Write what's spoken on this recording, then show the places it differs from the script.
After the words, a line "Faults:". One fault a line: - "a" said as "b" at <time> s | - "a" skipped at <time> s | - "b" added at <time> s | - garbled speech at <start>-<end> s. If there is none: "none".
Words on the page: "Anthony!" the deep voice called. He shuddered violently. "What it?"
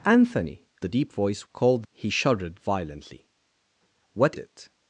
"Anthony!" the deep voice called. He shuddered violently. "What it?"
Faults:
none